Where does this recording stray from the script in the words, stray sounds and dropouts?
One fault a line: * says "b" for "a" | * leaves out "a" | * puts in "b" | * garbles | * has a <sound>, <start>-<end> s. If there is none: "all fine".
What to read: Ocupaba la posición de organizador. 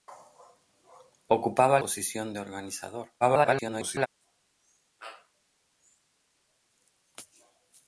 * leaves out "la"
* garbles